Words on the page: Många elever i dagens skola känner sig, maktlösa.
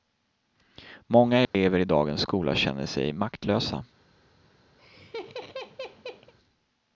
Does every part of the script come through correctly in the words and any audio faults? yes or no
no